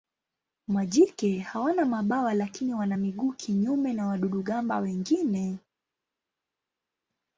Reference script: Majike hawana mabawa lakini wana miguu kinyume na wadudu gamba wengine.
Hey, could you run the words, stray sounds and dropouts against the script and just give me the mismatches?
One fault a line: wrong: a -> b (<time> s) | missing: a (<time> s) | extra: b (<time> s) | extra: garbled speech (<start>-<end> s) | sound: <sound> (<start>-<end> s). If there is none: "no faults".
no faults